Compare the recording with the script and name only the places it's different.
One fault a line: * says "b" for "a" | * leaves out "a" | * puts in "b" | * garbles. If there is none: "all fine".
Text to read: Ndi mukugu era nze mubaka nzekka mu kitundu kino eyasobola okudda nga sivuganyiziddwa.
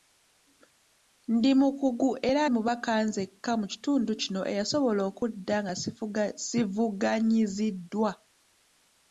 * leaves out "nze"